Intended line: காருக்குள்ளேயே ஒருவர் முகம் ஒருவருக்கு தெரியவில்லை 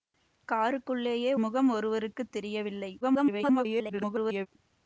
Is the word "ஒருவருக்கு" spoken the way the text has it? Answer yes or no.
yes